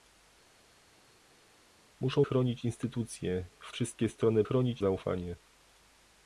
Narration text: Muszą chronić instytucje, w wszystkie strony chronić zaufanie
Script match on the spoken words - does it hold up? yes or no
yes